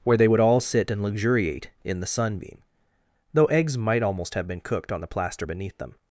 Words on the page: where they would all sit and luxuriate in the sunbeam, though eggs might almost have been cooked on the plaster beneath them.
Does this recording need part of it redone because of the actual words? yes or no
no